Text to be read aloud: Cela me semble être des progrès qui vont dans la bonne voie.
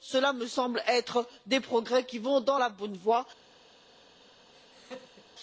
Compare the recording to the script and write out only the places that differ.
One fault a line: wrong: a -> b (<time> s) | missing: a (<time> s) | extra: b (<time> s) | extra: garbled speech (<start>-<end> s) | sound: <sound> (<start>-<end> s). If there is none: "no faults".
sound: laugh (4.5-5.3 s)